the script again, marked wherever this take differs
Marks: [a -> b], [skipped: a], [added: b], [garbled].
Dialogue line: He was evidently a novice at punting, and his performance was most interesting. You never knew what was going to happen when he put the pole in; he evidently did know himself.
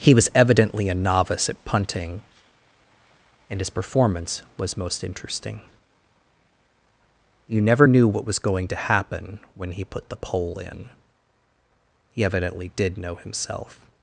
He was evidently a novice at punting, and his performance was most interesting. You never knew what was going to happen when he put the pole in; he evidently did know himself.